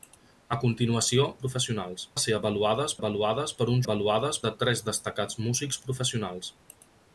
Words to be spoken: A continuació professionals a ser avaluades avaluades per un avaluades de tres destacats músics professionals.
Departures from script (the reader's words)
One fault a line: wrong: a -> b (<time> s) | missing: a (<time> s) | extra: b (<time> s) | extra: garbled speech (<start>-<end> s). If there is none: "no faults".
no faults